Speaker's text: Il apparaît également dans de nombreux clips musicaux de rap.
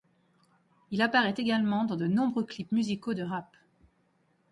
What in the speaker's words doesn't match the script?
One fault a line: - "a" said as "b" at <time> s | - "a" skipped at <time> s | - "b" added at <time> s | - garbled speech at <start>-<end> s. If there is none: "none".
none